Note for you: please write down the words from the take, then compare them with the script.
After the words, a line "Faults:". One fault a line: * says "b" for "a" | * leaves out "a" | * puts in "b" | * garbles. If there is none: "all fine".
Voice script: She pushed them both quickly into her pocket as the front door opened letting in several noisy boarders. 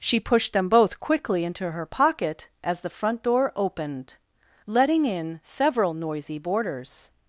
She pushed them both quickly into her pocket as the front door opened letting in several noisy boarders.
Faults:
all fine